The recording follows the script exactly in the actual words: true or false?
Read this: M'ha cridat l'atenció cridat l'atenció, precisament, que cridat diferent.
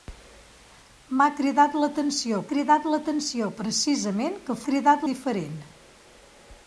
true